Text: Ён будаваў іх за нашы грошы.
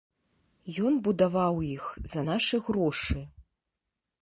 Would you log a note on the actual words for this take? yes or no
no